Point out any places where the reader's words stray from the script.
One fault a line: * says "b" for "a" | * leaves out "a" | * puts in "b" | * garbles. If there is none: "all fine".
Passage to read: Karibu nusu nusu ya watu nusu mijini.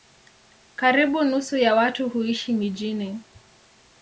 * leaves out "nusu"
* says "huishi" for "nusu"